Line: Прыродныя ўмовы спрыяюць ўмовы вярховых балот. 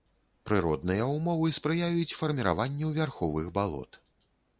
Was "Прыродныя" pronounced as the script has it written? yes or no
yes